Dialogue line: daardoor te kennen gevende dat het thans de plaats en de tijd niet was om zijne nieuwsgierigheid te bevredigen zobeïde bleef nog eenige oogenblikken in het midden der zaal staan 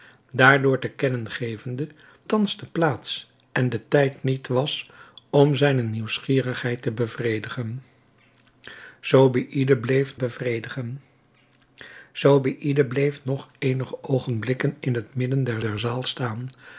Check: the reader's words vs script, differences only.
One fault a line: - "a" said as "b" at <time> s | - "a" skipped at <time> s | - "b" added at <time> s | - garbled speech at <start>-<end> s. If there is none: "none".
- "dat het" skipped at 1.9 s
- "bevredigen zobeïde bleef" added at 10.1 s
- "der" added at 15.6 s